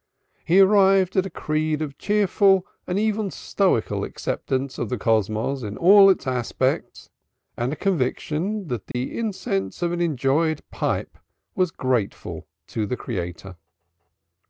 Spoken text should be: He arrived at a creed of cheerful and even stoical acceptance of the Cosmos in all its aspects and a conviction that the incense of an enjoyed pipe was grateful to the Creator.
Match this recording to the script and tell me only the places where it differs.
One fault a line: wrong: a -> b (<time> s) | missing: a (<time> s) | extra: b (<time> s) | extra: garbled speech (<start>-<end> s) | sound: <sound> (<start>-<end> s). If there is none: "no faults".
sound: dropout (8.9-8.9 s)